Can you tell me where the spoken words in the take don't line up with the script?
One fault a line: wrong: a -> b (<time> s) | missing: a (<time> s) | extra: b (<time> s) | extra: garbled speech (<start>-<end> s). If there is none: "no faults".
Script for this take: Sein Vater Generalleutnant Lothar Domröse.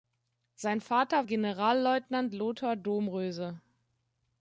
no faults